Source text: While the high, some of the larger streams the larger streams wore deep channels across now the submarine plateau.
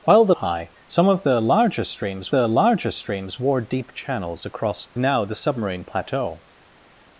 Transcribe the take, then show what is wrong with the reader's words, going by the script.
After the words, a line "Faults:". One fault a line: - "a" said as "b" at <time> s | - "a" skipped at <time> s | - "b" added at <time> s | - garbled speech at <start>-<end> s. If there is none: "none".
While the high, some of the larger streams the larger streams wore deep channels across now the submarine plateau.
Faults:
none